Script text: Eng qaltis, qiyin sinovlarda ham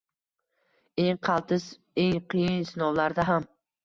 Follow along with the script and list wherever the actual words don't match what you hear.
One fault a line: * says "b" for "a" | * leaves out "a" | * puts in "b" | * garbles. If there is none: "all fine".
* puts in "eng"